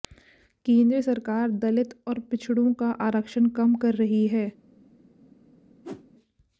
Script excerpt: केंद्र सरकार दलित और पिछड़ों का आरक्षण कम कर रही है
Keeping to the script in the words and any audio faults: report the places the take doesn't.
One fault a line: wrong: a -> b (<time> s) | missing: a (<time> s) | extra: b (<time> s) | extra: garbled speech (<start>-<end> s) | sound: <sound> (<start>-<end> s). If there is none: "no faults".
sound: whoosh (5.8-6.1 s)